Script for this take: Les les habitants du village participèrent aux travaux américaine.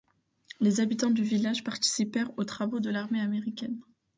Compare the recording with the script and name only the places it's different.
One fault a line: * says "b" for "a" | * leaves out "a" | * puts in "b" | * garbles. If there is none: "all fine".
* leaves out "les"
* puts in "de l'armée"